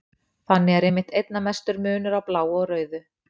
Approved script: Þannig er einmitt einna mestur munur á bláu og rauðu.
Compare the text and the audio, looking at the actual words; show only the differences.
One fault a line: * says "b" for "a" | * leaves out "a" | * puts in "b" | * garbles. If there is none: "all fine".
all fine